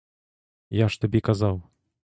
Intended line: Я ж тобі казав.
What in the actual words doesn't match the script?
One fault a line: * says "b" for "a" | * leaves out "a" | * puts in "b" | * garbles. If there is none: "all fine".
all fine